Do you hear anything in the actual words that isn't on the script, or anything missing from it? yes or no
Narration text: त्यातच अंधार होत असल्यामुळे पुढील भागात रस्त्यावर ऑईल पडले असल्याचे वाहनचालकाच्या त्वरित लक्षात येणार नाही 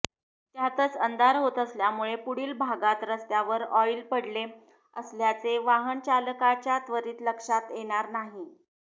no